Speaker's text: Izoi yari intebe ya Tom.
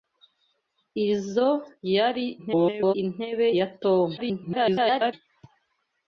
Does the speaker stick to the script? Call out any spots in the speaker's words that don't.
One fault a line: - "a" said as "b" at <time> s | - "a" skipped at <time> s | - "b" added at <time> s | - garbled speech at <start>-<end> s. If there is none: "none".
- garbled speech at 2.4-2.9 s
- garbled speech at 4.2-5.1 s